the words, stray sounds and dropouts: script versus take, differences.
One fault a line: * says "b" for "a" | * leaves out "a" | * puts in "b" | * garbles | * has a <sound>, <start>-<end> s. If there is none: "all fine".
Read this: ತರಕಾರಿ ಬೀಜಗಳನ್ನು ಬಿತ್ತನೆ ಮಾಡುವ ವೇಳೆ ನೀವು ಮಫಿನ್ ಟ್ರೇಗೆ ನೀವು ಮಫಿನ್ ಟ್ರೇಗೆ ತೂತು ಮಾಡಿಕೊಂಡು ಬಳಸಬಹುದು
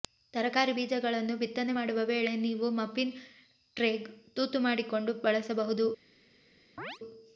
* leaves out "ನೀವು ಮಫಿನ್ ಟ್ರೇಗೆ"
* has a chirp, 6.8-7.0 s